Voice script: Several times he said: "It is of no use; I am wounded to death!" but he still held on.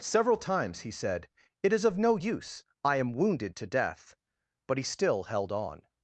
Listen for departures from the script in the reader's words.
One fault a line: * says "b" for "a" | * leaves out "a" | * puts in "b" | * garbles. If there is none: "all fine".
all fine